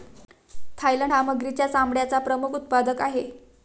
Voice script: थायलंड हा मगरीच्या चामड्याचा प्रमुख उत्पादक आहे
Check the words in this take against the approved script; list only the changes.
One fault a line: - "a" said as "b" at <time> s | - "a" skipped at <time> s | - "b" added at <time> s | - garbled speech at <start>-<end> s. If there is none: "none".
none